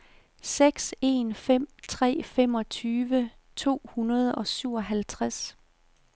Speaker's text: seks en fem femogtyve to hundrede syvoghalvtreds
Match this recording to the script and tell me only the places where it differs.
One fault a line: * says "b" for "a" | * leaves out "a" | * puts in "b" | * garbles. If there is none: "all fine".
* puts in "tre"
* puts in "og"